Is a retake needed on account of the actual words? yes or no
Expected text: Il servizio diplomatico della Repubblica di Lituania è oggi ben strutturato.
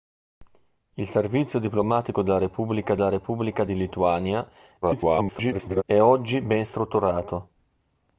yes